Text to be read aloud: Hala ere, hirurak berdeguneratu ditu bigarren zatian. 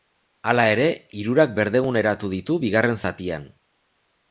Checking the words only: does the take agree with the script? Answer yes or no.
yes